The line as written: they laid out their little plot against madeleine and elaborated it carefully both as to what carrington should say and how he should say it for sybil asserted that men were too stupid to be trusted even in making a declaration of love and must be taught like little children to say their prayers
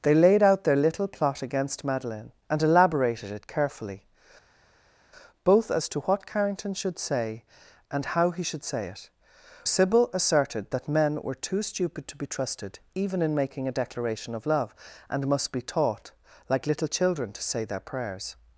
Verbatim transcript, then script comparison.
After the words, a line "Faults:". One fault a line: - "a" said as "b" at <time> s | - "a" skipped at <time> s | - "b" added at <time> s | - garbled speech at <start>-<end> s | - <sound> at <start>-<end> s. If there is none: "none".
they laid out their little plot against madeleine and elaborated it carefully both as to what carrington should say and how he should say it sybil asserted that men were too stupid to be trusted even in making a declaration of love and must be taught like little children to say their prayers
Faults:
- "for" skipped at 9.1 s